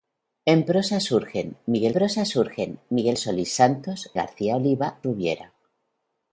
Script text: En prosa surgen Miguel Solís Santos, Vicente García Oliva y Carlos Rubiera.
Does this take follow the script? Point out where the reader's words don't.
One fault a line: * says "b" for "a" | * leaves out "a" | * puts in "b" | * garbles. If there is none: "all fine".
* puts in "prosa surgen Miguel"
* leaves out "Vicente"
* leaves out "y Carlos"